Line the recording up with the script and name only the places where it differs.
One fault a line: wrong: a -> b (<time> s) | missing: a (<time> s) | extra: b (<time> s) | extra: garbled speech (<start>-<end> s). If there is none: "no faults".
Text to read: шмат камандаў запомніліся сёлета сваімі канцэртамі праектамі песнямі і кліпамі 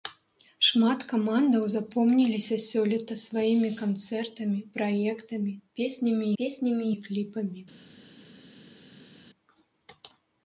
extra: песнямі (6.4 s)